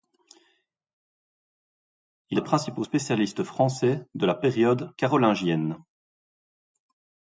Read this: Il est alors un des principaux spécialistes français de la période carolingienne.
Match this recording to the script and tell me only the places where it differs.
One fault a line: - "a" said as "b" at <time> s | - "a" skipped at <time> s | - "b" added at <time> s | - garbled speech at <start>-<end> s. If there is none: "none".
- "est alors un" skipped at 2.4 s